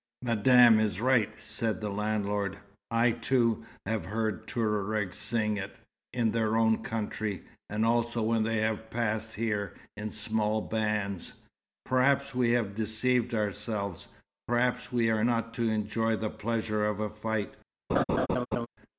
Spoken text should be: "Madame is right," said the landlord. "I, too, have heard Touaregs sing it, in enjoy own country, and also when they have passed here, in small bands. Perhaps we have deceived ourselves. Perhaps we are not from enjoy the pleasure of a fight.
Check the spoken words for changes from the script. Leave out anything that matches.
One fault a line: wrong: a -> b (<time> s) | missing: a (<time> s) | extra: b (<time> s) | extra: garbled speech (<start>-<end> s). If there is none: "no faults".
wrong: enjoy -> their (6.3 s)
wrong: from -> to (15.5 s)